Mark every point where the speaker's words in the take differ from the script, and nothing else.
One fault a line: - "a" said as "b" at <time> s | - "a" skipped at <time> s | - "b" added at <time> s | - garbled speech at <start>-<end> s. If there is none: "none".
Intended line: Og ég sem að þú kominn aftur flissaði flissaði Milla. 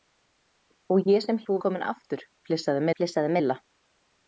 none